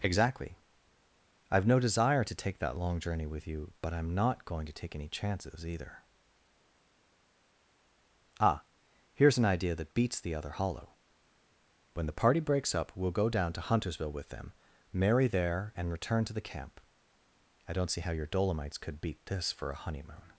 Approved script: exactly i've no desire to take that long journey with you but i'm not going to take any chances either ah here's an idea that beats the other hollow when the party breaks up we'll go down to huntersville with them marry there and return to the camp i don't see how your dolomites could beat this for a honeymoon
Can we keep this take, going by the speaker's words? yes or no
yes